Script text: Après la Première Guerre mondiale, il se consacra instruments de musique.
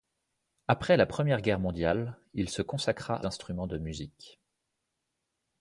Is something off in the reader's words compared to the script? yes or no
no